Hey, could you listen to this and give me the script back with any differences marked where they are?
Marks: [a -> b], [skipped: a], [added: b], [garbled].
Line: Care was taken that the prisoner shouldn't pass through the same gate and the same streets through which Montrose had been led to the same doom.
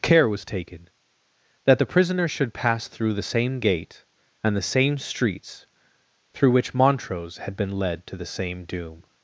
Care was taken that the prisoner [shouldn't -> should] pass through the same gate and the same streets through which Montrose had been led to the same doom.